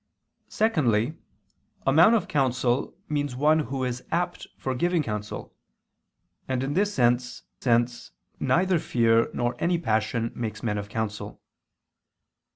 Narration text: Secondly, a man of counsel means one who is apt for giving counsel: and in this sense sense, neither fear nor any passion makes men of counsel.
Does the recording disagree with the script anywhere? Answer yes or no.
no